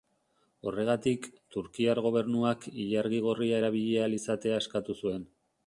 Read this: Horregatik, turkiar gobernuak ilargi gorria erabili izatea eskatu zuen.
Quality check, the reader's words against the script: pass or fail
fail